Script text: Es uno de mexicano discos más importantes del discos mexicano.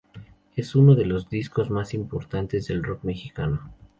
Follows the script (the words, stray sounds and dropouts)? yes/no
no